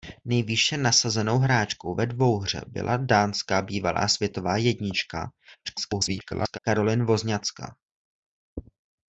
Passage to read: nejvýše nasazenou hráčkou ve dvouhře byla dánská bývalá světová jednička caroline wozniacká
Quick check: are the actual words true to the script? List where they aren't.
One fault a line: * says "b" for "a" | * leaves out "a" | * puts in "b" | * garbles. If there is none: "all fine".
* garbles